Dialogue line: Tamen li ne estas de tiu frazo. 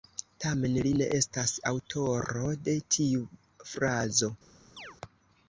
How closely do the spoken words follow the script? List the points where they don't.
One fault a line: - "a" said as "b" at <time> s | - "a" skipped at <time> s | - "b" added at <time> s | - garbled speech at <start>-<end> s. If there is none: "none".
- "aŭtoro" added at 1.7 s